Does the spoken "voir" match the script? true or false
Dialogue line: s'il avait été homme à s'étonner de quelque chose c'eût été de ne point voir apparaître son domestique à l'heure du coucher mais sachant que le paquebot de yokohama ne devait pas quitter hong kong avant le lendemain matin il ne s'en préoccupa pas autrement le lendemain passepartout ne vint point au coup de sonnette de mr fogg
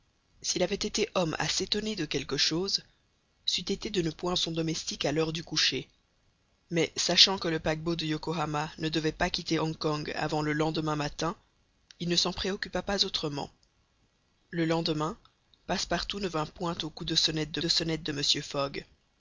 false